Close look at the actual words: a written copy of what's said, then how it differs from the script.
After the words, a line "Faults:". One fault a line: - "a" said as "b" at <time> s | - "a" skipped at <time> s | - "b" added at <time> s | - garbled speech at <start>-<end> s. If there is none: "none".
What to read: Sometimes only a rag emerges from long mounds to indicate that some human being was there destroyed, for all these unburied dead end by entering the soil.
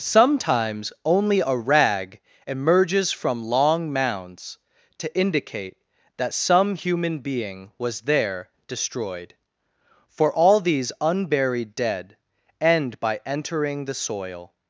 Sometimes only a rag emerges from long mounds to indicate that some human being was there destroyed, for all these unburied dead end by entering the soil.
Faults:
none